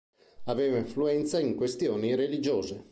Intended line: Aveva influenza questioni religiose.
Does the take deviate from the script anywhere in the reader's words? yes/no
yes